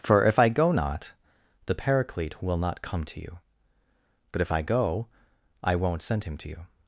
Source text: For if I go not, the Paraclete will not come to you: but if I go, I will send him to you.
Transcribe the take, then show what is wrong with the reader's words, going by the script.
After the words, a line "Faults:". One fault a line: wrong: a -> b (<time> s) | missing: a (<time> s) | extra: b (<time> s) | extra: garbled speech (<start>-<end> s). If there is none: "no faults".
For if I go not, the Paraclete will not come to you: but if I go, I won't send him to you.
Faults:
wrong: will -> won't (5.8 s)